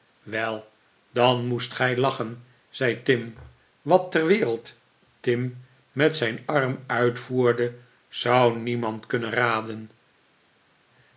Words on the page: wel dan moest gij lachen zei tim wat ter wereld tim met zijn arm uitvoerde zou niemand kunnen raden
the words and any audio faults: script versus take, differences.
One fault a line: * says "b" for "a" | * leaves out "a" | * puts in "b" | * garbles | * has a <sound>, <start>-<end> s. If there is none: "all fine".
all fine